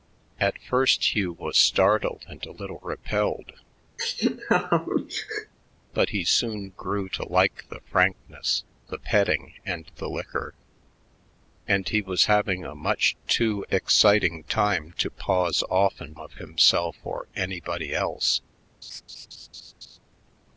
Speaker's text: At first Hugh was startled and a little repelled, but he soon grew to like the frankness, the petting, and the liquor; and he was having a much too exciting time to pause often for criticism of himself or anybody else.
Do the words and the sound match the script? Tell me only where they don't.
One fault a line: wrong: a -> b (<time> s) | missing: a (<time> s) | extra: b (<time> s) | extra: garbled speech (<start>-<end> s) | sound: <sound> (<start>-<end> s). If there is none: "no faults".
sound: laugh (4.0-5.5 s)
missing: for criticism (16.2 s)
sound: laugh (18.8-20.0 s)